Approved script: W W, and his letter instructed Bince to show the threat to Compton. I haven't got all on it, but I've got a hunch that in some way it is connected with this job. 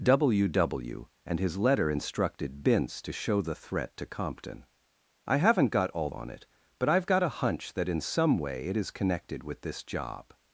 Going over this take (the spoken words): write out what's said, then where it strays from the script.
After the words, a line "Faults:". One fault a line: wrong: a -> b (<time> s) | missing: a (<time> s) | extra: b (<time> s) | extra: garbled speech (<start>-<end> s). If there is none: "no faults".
W W, and his letter instructed Bince to show the threat to Compton. I haven't got all on it, but I've got a hunch that in some way it is connected with this job.
Faults:
no faults